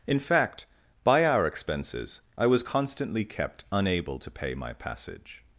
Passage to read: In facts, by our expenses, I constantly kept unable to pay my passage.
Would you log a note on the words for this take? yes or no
yes